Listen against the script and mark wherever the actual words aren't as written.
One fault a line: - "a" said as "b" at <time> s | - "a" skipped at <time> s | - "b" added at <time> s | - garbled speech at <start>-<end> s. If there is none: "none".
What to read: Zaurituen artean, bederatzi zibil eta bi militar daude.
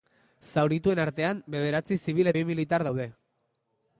- "eta" skipped at 2.3 s